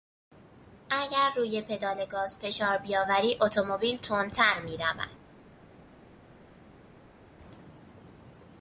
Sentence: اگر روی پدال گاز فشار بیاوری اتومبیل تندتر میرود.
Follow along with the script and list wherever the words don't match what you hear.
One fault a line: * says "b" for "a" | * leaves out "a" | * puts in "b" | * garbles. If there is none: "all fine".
all fine